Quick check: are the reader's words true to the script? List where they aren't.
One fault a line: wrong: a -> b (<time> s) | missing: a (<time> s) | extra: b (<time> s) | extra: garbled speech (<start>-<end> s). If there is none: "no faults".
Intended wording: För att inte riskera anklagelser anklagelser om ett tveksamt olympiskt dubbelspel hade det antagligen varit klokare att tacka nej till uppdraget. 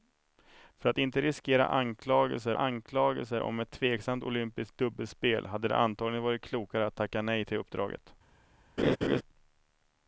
no faults